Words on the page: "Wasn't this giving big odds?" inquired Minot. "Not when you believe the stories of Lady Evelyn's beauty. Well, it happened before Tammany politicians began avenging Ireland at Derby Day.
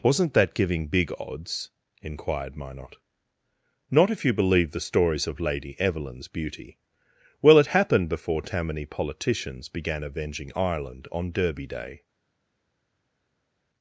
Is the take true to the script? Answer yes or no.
no